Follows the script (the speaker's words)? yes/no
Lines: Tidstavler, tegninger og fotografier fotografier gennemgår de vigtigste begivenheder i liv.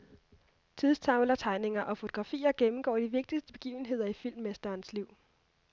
no